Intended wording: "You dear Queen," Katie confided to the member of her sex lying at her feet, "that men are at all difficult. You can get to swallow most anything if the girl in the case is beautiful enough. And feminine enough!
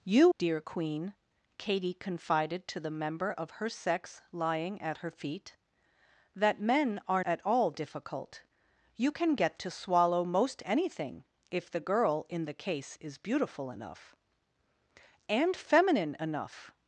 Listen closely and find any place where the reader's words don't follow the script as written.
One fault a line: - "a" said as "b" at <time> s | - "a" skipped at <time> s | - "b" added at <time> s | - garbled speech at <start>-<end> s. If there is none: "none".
none